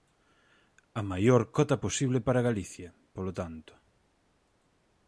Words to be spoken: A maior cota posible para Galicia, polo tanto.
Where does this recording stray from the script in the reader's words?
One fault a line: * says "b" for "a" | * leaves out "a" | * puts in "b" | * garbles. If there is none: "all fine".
all fine